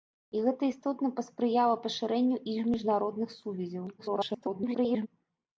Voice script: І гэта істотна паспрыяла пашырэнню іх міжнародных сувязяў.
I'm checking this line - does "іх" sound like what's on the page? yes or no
yes